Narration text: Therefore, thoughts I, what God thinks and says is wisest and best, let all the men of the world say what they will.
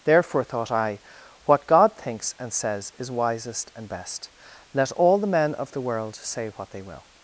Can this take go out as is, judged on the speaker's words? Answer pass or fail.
fail